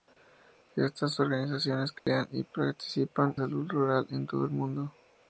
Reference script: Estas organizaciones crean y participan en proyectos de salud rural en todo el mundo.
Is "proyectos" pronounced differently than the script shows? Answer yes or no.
yes